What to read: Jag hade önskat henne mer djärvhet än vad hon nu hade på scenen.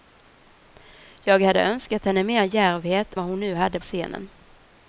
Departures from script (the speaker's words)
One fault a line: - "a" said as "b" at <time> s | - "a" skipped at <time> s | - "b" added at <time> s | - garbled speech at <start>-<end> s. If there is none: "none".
- "än" skipped at 3.1 s
- "på" skipped at 3.8 s